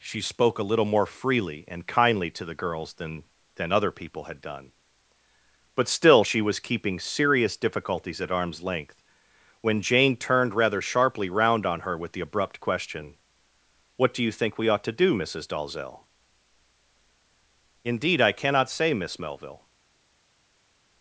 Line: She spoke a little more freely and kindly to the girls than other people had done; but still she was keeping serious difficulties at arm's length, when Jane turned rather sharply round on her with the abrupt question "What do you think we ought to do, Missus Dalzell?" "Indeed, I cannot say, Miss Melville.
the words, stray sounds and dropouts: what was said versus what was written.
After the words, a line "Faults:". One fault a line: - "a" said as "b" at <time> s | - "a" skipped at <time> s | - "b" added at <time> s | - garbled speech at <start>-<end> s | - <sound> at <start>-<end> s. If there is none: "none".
She spoke a little more freely and kindly to the girls than than other people had done; but still she was keeping serious difficulties at arm's length, when Jane turned rather sharply round on her with the abrupt question "What do you think we ought to do, Missus Dalzell?" "Indeed, I cannot say, Miss Melville.
Faults:
- "than" added at 3.5 s